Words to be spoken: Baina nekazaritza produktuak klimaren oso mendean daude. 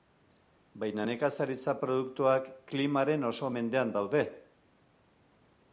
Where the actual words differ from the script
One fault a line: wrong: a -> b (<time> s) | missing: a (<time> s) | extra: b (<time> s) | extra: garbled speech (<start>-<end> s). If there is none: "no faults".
no faults